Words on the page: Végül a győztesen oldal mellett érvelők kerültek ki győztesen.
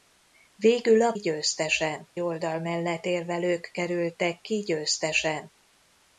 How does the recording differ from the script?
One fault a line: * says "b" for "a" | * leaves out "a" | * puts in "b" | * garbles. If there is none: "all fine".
all fine